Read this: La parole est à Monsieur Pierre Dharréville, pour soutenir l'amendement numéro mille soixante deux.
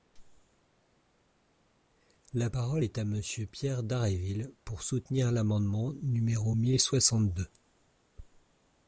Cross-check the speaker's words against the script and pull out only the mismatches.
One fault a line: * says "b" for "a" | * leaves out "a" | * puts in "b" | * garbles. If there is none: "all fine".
all fine